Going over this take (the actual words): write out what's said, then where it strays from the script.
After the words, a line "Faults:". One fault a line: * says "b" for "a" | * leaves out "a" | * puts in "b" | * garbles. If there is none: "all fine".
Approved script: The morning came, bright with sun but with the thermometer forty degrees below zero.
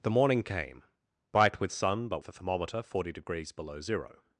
The morning came, bright with sun but the thermometer forty degrees below zero.
Faults:
* leaves out "with"